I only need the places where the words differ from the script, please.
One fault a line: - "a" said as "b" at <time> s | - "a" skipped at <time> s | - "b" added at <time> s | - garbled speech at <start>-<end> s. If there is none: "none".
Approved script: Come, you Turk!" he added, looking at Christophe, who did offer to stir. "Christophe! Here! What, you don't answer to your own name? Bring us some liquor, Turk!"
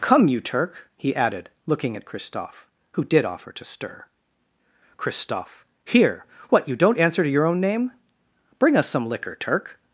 none